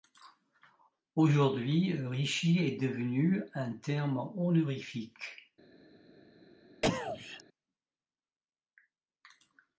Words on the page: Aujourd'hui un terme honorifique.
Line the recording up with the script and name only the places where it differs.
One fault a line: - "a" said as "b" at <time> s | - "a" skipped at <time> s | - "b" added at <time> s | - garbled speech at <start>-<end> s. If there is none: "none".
- "rishi est devenu" added at 1.9 s